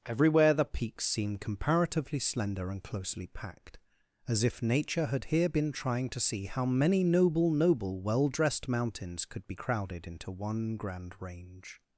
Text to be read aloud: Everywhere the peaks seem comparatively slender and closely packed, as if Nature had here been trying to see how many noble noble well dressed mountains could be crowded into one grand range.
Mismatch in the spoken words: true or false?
false